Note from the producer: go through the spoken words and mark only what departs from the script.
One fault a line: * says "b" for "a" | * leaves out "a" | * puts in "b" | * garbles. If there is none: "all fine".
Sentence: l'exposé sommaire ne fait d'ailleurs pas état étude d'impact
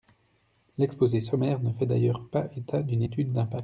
* puts in "d'une"